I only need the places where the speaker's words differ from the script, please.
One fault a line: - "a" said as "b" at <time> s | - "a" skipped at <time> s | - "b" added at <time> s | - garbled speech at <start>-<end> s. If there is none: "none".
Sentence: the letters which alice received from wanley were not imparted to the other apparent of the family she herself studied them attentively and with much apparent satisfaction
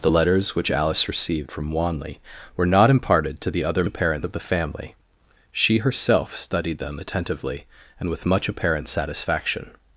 none